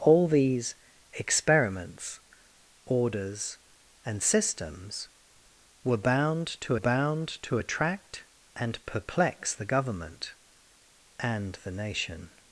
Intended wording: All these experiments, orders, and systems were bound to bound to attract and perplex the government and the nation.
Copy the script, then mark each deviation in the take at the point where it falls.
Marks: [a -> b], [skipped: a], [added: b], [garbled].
All these experiments, orders, and systems were bound to bound to attract and perplex the government and the nation.